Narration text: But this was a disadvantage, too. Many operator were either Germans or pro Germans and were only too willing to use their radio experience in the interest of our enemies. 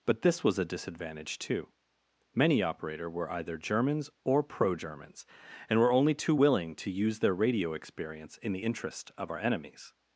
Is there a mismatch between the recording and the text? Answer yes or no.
no